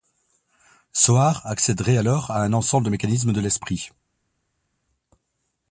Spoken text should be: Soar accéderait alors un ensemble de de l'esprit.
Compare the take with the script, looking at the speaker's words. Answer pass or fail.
fail